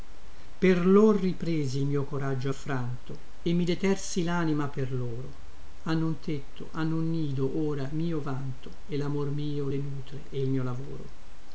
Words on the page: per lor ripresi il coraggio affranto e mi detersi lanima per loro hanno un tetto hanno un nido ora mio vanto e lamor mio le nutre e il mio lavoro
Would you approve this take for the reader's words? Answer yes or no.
no